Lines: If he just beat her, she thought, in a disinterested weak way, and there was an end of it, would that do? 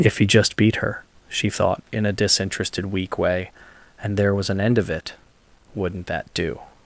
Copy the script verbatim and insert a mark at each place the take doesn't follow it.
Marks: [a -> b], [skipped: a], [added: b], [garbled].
If he just beat her, she thought, in a disinterested weak way, and there was an end of it, [would -> wouldn't] that do?